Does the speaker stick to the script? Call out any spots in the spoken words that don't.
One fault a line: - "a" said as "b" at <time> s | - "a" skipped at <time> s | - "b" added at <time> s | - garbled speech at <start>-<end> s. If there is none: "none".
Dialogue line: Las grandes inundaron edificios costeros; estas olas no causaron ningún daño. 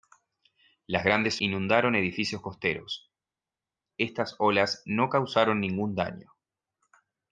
none